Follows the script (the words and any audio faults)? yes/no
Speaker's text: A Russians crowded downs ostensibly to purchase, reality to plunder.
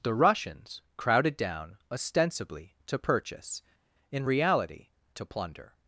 no